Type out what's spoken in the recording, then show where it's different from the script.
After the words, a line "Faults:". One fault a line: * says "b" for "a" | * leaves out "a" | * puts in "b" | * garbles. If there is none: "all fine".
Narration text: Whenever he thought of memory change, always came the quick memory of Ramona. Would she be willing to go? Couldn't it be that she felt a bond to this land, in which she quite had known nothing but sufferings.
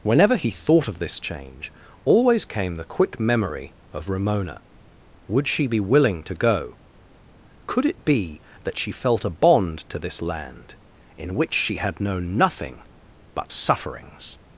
Whenever he thought of this change, always came the quick memory of Ramona. Would she be willing to go? Could it be that she felt a bond to this land, in which she had known nothing but sufferings.
Faults:
* says "this" for "memory"
* says "Could" for "Couldn't"
* leaves out "quite"